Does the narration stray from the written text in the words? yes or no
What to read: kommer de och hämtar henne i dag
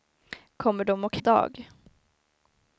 yes